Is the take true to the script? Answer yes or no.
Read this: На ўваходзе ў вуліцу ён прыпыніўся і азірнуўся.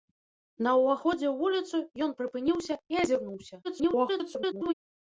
no